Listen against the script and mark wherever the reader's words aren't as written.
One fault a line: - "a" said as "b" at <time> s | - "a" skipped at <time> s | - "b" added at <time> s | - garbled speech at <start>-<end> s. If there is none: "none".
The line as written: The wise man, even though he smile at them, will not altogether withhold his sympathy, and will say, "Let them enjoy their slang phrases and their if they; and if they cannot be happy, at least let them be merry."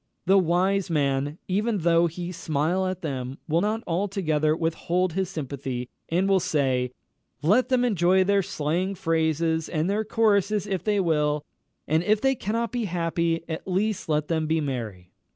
- "choruses" added at 10.0 s
- "will" added at 11.0 s